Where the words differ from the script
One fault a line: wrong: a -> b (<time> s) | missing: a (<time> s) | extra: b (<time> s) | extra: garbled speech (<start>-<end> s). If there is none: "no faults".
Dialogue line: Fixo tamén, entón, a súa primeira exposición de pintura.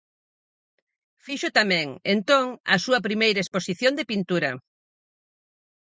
no faults